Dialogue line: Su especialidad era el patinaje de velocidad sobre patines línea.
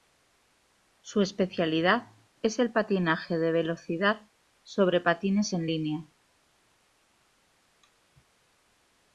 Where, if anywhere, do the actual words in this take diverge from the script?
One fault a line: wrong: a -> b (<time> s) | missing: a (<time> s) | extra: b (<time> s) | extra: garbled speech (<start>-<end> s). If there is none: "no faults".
wrong: era -> es (2.4 s)
extra: en (5.5 s)